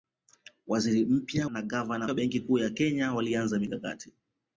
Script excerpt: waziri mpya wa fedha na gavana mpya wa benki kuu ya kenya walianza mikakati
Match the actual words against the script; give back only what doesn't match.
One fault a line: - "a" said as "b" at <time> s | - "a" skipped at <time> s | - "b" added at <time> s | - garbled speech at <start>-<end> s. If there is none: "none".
- "wa fedha" skipped at 1.5 s
- "mpya" skipped at 2.1 s